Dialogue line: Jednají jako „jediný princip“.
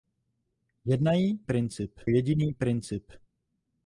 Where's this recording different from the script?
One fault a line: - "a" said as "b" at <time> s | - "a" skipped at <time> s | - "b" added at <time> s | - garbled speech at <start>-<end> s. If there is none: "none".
- "jako" said as "princip" at 1.4 s